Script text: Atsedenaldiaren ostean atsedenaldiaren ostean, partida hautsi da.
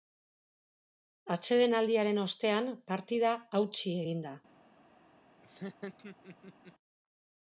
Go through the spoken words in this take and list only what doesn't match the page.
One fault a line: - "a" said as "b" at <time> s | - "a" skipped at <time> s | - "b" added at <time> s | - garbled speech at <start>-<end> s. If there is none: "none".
- "atsedenaldiaren ostean" skipped at 2.7 s
- "egin" added at 4.1 s